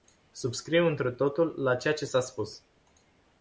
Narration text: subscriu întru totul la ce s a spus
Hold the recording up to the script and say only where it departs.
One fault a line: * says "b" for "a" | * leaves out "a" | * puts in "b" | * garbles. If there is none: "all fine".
* puts in "ceea"